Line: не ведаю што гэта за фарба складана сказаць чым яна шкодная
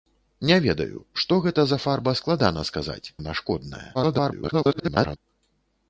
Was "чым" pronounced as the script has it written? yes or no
no